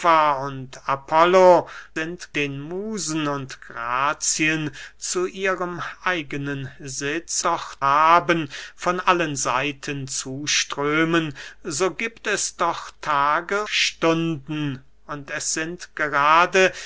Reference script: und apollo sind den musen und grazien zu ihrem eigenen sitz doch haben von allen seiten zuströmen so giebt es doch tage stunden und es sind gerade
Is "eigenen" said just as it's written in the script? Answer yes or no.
yes